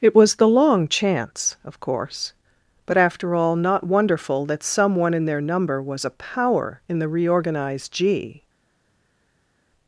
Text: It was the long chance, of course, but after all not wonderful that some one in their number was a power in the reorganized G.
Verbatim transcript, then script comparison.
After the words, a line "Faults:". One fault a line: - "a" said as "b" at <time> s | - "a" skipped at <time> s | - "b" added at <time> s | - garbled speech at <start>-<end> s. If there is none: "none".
It was the long chance, of course, but after all not wonderful that some one in their number was a power in the reorganized G.
Faults:
none